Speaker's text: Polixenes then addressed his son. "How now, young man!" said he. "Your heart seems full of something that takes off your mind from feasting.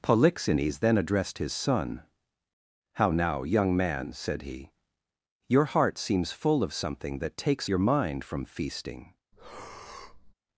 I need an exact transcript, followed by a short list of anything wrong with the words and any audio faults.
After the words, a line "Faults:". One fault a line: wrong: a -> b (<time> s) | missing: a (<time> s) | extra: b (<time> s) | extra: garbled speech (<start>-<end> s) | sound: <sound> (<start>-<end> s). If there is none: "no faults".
Polixenes then addressed his son. "How now, young man!" said he. "Your heart seems full of something that takes your mind from feasting.
Faults:
missing: off (7.7 s)
sound: breath (9.3-10.3 s)